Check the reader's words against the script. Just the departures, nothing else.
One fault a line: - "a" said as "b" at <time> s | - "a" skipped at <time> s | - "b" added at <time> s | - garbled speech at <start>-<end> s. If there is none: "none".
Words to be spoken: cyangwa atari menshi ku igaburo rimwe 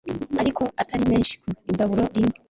- "cyangwa" said as "ariko" at 0.4 s